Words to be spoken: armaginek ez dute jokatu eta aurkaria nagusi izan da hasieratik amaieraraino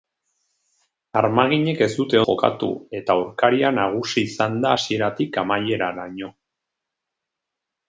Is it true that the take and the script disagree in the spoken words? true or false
false